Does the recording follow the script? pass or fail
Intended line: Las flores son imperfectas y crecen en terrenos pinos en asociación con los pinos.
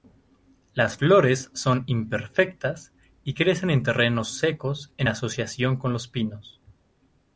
fail